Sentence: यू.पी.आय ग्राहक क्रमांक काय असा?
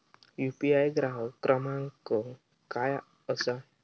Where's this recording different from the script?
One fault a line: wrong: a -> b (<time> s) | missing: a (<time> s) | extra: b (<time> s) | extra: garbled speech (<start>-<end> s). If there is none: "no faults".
no faults